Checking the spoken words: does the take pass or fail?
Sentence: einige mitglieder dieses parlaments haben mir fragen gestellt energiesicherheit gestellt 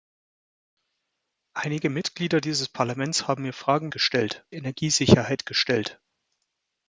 pass